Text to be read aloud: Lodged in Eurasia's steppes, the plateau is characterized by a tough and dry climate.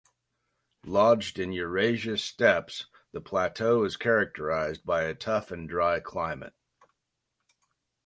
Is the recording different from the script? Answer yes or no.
no